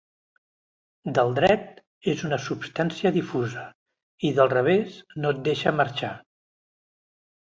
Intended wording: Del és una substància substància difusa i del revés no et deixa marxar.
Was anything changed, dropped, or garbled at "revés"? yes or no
no